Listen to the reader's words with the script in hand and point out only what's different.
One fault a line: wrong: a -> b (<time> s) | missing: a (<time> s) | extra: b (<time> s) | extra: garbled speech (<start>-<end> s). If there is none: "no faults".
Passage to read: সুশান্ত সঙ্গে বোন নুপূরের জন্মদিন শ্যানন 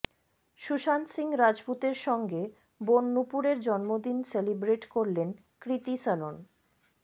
extra: সিং রাজপুতের (1.1 s)
extra: সেলিব্রেট করলেন কৃতী (4.2 s)